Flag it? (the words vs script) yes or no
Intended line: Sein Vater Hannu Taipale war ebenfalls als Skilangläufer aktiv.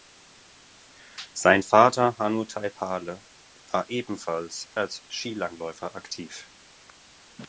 no